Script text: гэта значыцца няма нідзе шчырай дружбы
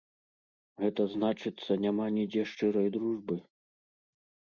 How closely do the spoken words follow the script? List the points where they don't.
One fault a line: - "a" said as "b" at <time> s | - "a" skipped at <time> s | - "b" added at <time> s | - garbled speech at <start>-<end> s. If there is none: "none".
none